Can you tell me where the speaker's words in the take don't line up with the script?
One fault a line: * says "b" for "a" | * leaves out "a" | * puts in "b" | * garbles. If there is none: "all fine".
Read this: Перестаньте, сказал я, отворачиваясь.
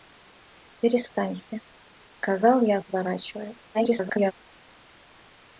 * garbles